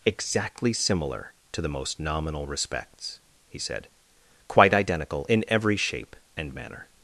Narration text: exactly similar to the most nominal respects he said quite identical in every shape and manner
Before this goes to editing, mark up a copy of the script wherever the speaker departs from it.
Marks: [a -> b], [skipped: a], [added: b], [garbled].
exactly similar to the most nominal respects he said quite identical in every shape and manner